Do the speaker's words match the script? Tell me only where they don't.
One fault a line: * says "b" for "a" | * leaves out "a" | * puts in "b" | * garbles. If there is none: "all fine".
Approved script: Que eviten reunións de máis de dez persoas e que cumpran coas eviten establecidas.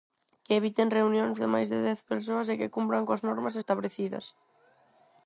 * says "normas" for "eviten"